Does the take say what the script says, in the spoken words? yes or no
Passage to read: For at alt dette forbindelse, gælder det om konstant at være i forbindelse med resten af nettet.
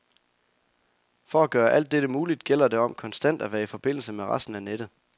no